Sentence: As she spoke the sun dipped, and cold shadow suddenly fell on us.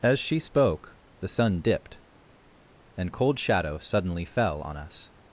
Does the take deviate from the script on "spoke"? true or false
false